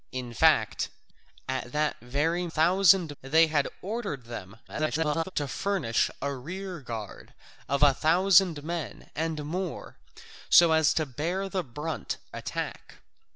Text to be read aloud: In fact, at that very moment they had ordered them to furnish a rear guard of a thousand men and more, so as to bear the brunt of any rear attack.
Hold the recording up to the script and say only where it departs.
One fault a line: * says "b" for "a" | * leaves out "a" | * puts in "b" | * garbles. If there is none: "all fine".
* says "thousand" for "moment"
* garbles
* leaves out "of any rear"